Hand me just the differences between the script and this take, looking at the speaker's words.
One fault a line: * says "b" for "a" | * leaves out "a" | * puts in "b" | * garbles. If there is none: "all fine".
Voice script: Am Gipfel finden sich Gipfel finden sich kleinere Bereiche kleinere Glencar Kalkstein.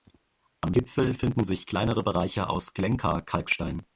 * leaves out "Gipfel finden sich"
* says "aus" for "kleinere"